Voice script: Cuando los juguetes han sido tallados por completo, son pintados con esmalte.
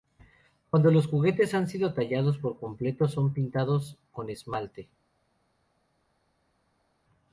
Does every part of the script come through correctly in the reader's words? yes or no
yes